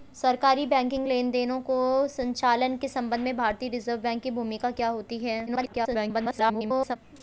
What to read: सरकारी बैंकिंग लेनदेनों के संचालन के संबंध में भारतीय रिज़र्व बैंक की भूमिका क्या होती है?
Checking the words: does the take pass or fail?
fail